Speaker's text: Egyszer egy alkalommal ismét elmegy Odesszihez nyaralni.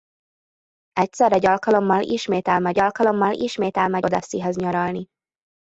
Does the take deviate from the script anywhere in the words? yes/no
yes